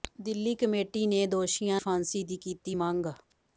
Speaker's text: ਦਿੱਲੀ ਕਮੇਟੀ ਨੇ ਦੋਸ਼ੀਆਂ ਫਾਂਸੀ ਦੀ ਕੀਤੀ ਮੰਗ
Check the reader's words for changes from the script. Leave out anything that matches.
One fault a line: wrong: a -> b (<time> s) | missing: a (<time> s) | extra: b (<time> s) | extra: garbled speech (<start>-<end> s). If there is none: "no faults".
no faults